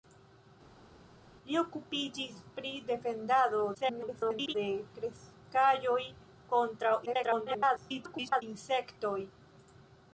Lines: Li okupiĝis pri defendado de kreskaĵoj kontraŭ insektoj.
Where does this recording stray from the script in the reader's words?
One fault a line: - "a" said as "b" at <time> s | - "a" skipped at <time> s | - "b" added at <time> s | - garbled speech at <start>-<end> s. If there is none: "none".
- garbled speech at 3.7-4.5 s
- garbled speech at 7.1-8.4 s